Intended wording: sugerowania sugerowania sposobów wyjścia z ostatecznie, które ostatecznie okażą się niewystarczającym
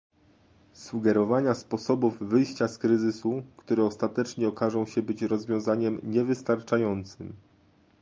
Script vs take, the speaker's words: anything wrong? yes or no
yes